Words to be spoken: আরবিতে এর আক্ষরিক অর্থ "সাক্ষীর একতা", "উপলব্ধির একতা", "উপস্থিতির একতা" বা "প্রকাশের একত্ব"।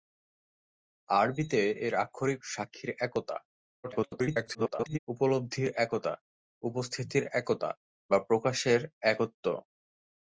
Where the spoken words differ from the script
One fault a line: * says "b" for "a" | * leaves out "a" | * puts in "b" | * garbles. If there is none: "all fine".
* leaves out "অর্থ"
* garbles